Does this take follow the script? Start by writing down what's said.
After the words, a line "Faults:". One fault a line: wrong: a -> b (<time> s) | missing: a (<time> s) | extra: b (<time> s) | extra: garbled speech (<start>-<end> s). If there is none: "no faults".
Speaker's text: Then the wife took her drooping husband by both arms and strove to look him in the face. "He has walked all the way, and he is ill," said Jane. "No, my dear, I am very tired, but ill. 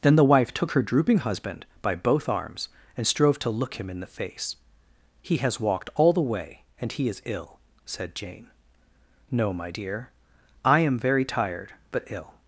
Then the wife took her drooping husband by both arms and strove to look him in the face. "He has walked all the way, and he is ill," said Jane. "No, my dear, I am very tired, but ill.
Faults:
no faults